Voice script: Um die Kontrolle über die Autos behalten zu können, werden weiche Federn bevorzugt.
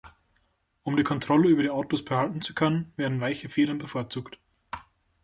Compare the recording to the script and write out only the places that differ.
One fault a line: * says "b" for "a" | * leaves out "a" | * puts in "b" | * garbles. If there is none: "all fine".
all fine